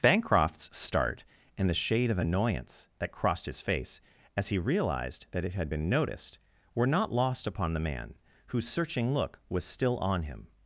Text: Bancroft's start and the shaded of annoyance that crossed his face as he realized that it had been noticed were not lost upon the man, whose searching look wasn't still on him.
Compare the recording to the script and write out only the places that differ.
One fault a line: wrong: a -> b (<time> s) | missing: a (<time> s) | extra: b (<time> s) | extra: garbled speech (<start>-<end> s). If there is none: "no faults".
wrong: shaded -> shade (1.8 s)
wrong: wasn't -> was (9.5 s)